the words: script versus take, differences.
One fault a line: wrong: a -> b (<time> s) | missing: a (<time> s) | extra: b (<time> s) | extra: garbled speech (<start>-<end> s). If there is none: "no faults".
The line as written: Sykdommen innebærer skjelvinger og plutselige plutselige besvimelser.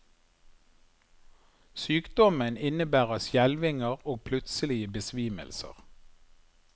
missing: plutselige (4.9 s)